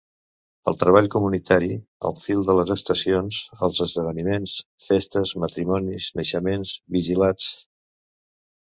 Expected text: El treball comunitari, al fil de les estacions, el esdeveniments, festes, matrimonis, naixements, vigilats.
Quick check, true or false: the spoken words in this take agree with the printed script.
false